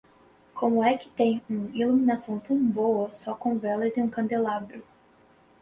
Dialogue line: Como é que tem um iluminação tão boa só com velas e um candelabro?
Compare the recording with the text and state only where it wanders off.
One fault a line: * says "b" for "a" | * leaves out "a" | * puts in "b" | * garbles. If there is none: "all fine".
all fine